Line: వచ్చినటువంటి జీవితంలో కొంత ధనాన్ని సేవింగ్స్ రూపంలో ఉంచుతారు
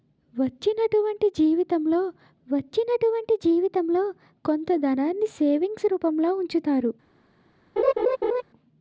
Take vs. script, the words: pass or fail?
fail